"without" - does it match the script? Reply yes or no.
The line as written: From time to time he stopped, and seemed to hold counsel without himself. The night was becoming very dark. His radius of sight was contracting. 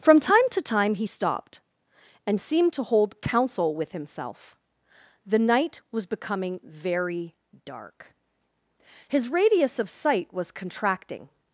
no